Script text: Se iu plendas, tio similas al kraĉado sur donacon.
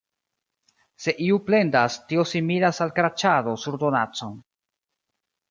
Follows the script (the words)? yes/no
yes